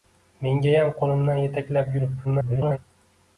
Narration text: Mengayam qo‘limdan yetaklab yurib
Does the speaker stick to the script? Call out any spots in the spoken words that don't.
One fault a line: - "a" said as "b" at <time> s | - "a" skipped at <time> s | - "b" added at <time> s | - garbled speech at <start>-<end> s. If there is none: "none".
- garbled speech at 2.2-2.8 s